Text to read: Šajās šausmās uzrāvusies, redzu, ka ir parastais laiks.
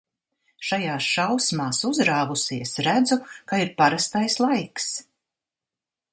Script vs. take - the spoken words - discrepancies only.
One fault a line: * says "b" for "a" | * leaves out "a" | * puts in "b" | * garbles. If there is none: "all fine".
all fine